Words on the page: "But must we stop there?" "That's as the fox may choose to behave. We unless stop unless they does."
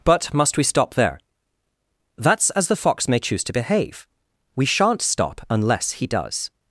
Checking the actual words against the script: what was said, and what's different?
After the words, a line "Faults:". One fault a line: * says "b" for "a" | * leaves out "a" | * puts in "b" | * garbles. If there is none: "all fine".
"But must we stop there?" "That's as the fox may choose to behave. We shan't stop unless he does."
Faults:
* says "shan't" for "unless"
* says "he" for "they"